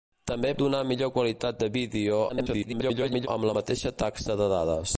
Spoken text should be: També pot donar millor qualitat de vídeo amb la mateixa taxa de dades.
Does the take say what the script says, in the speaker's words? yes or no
no